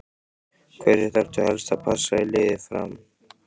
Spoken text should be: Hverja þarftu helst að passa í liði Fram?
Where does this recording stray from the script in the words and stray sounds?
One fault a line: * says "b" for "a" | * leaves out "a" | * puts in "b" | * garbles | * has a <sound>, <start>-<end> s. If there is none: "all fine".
all fine